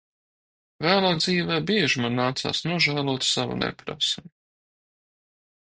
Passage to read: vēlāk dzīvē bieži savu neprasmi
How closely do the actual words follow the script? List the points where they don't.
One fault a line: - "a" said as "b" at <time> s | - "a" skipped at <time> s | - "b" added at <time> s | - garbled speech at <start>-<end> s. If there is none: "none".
- "man nācās nožēlot" added at 2.0 s